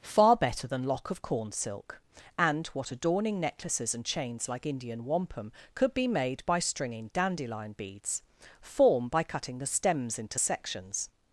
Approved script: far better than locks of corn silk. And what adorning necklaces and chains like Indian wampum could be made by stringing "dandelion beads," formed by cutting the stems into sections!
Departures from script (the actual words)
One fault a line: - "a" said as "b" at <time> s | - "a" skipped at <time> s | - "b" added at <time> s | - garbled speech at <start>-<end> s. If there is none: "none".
- "locks" said as "lock" at 0.8 s
- "formed" said as "form" at 8.6 s